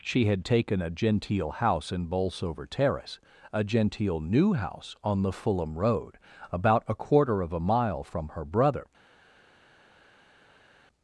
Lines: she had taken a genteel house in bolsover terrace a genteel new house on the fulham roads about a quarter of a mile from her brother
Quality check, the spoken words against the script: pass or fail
fail